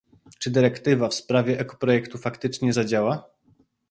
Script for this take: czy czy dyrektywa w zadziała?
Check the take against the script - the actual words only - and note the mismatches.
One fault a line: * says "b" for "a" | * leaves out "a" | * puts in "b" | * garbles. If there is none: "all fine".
* leaves out "czy"
* puts in "sprawie ekoprojektu faktycznie"